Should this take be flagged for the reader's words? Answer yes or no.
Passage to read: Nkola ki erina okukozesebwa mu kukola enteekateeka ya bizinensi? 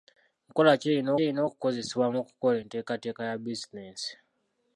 yes